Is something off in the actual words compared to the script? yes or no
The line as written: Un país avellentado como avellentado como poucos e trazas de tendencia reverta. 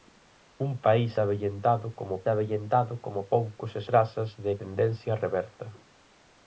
no